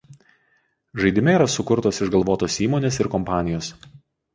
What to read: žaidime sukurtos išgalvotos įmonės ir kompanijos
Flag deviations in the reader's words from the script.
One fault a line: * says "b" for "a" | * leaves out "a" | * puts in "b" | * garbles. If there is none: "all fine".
* puts in "yra"